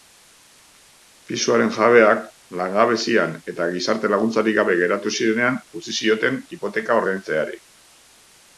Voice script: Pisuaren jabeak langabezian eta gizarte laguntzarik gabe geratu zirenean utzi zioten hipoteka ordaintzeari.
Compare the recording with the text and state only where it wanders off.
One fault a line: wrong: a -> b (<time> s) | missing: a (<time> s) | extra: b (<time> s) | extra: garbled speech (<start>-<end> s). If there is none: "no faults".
no faults